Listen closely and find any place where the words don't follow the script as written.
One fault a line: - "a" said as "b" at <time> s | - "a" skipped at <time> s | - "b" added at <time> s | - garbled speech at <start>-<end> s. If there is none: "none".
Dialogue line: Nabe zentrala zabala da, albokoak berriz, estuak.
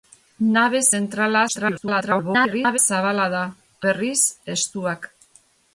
- garbled speech at 1.5-2.8 s
- "albokoak" skipped at 3.4 s